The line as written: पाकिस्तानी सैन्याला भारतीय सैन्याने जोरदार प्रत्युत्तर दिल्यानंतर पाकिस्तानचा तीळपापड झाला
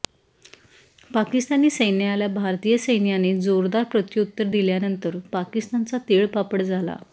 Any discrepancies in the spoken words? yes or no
no